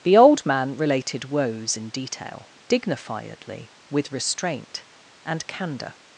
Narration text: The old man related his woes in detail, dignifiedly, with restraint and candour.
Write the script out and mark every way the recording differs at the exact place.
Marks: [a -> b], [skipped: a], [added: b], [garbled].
The old man related [skipped: his] woes in detail, dignifiedly, with restraint and candour.